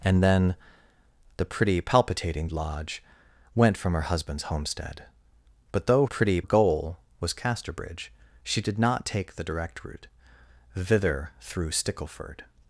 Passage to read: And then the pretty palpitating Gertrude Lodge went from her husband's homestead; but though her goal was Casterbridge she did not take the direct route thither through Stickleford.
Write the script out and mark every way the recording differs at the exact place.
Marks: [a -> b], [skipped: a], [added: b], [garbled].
And then the pretty palpitating [skipped: Gertrude] Lodge went from her husband's homestead; but though [her -> pretty] goal was Casterbridge she did not take the direct route thither through Stickleford.